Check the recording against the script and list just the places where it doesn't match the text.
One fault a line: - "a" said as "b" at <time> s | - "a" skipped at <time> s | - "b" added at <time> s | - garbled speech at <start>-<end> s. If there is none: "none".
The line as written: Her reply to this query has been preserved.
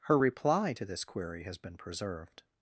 none